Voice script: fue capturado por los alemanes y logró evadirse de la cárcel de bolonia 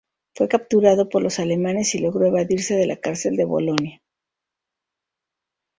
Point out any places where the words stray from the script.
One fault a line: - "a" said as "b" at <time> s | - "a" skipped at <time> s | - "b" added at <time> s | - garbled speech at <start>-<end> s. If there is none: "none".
none